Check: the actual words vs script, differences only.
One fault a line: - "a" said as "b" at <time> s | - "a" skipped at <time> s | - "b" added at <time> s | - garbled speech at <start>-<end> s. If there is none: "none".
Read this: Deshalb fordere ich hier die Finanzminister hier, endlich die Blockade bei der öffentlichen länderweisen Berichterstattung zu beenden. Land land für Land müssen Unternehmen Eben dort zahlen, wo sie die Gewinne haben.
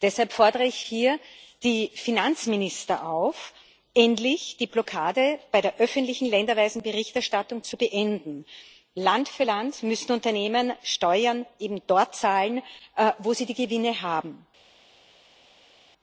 - "hier" said as "auf" at 3.1 s
- "land" skipped at 9.3 s
- "Steuern" added at 10.8 s